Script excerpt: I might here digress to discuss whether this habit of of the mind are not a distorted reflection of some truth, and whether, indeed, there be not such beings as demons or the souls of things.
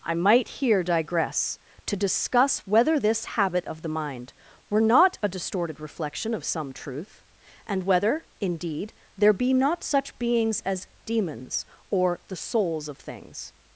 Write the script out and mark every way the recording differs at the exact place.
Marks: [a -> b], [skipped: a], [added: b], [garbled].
I might here digress to discuss whether this habit of [skipped: of] the mind [are -> were] not a distorted reflection of some truth, and whether, indeed, there be not such beings as demons or the souls of things.